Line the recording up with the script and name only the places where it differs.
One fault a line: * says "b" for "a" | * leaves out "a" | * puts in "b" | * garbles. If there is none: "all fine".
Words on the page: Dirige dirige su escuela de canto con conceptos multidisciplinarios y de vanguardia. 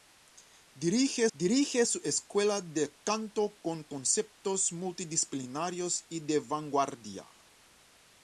all fine